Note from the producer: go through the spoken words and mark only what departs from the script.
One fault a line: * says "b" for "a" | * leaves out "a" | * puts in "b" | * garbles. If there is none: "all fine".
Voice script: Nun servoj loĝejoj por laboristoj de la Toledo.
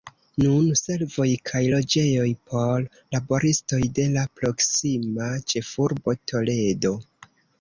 * puts in "kaj"
* puts in "proksima ĉefurbo"